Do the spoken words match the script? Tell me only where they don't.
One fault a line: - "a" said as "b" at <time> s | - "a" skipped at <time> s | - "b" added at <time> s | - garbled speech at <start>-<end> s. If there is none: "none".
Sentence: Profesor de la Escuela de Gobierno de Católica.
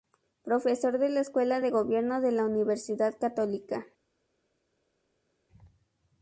- "la Universidad" added at 2.3 s